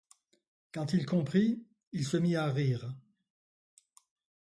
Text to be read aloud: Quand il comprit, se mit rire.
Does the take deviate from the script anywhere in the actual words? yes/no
yes